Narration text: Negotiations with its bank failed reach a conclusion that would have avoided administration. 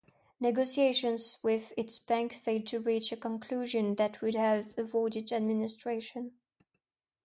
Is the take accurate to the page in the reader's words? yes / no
no